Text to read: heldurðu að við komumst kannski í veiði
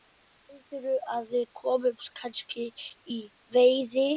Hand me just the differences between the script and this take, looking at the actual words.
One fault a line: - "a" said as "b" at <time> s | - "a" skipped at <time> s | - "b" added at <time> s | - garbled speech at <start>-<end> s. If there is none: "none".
none